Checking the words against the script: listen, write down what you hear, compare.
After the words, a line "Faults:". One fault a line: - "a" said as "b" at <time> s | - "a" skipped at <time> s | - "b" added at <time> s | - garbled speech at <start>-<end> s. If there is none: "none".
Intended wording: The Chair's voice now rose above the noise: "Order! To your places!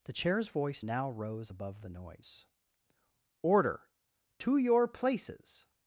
The Chair's voice now rose above the noise: "Order! To your places!
Faults:
none